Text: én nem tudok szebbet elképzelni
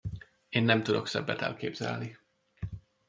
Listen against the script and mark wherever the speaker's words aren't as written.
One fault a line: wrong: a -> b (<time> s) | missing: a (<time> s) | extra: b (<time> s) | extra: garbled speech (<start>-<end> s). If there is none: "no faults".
no faults